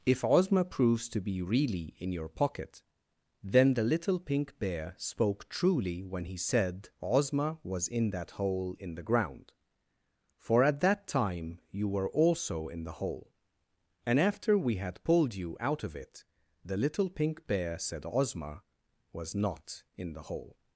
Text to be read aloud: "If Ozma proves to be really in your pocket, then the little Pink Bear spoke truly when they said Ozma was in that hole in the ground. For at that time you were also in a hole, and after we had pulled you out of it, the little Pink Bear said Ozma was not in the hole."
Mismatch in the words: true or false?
true